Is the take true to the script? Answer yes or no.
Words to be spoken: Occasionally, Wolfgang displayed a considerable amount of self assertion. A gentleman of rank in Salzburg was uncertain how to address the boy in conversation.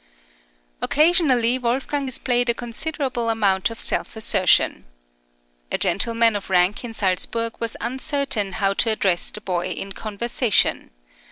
yes